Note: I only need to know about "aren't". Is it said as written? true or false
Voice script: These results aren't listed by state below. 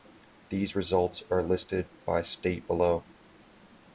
false